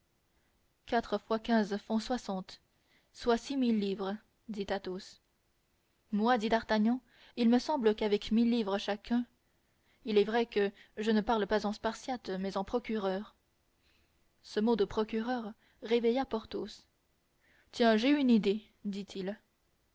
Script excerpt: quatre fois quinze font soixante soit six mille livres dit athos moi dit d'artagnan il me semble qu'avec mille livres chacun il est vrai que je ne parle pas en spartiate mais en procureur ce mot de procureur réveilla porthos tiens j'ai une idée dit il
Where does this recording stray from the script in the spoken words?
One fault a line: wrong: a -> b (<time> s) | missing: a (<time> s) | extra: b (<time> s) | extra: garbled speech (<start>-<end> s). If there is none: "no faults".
no faults